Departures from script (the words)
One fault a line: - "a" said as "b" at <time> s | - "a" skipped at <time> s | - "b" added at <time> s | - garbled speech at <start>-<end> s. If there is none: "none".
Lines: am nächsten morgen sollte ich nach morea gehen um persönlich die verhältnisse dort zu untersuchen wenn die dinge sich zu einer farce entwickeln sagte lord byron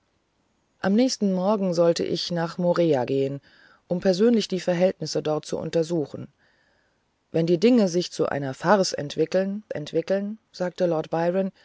- "entwickeln" added at 9.7 s